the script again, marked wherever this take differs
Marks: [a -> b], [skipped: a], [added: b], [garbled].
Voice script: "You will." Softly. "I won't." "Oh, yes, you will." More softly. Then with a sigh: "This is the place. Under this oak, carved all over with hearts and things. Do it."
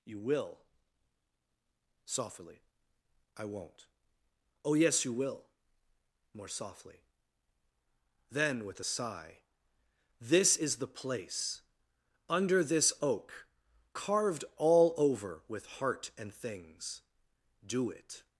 "You will." Softly. "I won't." "Oh, yes, you will." More softly. Then with a sigh: "This is the place. Under this oak, carved all over with [hearts -> heart] and things. Do it."